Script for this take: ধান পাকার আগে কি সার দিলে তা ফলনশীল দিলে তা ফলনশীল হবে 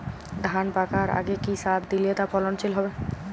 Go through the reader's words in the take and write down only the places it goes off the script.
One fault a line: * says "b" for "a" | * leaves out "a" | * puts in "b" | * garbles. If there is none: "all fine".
* leaves out "দিলে তা ফলনশীল"